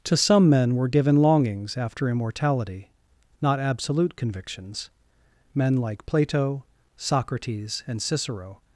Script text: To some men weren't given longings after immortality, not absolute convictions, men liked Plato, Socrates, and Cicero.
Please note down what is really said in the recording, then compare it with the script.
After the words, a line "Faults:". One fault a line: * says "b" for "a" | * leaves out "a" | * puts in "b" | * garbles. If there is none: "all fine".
To some men were given longings after immortality, not absolute convictions, men like Plato, Socrates, and Cicero.
Faults:
* says "were" for "weren't"
* says "like" for "liked"